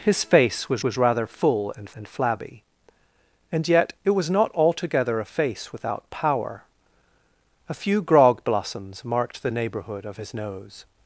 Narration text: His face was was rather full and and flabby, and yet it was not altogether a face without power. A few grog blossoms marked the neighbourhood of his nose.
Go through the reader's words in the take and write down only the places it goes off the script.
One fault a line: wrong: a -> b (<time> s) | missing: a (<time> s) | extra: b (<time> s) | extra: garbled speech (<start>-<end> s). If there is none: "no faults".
no faults